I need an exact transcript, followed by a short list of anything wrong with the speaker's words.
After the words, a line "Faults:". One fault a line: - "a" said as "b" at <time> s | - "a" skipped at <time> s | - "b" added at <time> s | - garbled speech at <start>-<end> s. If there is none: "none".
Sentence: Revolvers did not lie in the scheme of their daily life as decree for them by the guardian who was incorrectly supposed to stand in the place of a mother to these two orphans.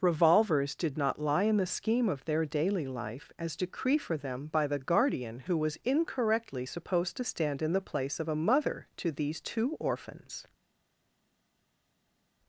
Revolvers did not lie in the scheme of their daily life as decree for them by the guardian who was incorrectly supposed to stand in the place of a mother to these two orphans.
Faults:
none